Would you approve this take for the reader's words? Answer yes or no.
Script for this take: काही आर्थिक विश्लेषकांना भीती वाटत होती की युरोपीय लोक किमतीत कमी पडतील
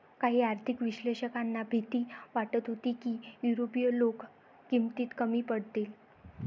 yes